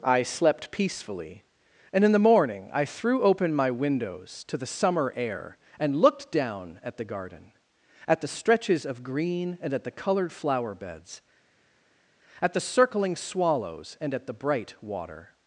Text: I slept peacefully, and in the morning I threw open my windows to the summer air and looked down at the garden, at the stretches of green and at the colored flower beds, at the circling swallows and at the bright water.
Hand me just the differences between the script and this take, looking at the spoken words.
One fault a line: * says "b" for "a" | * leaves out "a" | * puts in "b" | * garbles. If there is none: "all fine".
all fine